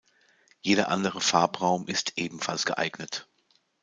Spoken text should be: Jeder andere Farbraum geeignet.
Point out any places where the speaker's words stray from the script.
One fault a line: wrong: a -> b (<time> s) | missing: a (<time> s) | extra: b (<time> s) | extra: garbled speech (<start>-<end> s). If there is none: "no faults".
extra: ist ebenfalls (1.9 s)